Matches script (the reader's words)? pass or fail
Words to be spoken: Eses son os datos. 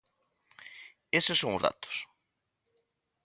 pass